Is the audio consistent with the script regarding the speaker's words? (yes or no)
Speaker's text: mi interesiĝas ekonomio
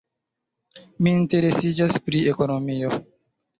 no